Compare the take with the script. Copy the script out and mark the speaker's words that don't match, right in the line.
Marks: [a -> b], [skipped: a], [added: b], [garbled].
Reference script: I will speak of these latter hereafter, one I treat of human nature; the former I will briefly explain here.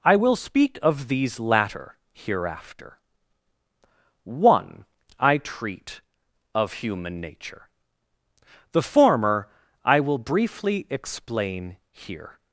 I will speak of these latter hereafter, one I treat of human nature; the former I will briefly explain here.